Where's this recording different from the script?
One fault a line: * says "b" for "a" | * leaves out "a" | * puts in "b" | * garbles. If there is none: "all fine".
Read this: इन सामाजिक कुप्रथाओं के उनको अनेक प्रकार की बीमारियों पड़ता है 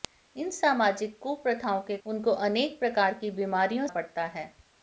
all fine